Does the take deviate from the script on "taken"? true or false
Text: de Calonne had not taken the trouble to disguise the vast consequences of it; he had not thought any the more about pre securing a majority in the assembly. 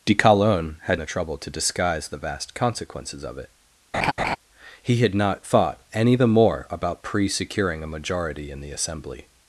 true